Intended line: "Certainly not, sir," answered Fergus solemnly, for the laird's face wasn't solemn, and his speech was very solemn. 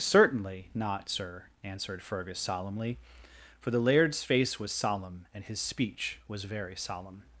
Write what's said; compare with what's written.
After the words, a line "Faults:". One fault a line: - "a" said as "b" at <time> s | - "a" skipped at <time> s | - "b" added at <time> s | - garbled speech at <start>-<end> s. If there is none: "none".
"Certainly not, sir," answered Fergus solemnly, for the laird's face was solemn, and his speech was very solemn.
Faults:
- "wasn't" said as "was" at 4.6 s